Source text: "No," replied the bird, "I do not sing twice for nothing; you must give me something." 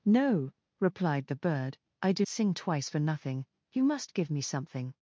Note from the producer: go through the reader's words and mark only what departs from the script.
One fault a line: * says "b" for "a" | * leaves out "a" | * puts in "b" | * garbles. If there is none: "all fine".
* leaves out "not"